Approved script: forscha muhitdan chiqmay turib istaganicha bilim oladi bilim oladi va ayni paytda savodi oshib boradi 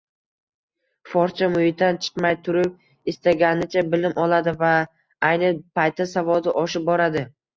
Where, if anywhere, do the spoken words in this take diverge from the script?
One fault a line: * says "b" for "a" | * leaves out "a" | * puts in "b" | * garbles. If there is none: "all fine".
* leaves out "bilim oladi"